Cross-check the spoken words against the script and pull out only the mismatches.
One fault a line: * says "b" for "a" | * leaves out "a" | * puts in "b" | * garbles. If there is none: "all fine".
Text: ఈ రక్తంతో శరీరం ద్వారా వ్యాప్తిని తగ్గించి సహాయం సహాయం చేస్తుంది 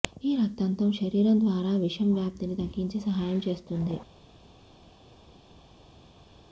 * puts in "విషం"
* leaves out "సహాయం"